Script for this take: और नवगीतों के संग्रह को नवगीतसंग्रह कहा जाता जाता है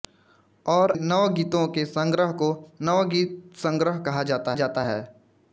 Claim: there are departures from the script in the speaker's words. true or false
false